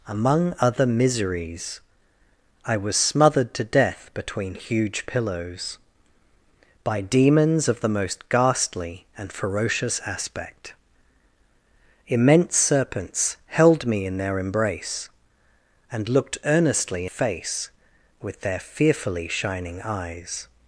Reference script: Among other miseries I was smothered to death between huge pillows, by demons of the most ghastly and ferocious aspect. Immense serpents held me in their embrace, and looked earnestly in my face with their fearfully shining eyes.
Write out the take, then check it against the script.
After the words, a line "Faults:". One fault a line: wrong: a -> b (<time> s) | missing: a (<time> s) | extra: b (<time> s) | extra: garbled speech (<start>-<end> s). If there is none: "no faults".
Among other miseries I was smothered to death between huge pillows, by demons of the most ghastly and ferocious aspect. Immense serpents held me in their embrace, and looked earnestly face with their fearfully shining eyes.
Faults:
missing: in my (17.1 s)